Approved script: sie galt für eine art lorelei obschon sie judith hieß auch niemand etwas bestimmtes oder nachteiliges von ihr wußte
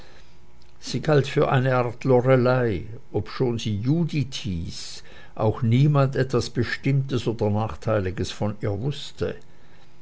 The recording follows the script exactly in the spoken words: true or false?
true